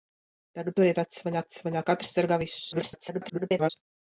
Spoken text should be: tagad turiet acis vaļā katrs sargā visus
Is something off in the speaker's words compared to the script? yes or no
yes